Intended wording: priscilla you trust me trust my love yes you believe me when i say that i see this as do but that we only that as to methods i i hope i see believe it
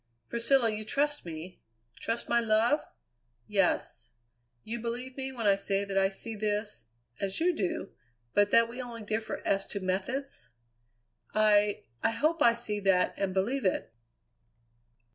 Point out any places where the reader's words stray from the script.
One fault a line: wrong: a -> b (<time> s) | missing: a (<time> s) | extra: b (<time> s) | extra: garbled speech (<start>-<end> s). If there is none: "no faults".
extra: you (7.4 s)
wrong: that -> differ (9.0 s)
extra: that and (12.8 s)